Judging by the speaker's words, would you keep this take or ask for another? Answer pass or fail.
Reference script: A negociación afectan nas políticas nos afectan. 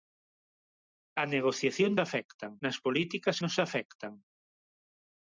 pass